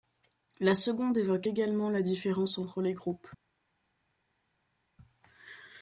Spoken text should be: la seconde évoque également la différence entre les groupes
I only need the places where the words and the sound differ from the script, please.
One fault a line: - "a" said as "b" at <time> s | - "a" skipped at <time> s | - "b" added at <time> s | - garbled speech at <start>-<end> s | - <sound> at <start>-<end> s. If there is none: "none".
none